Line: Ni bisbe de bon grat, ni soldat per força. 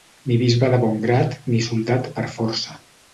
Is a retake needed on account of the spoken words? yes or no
no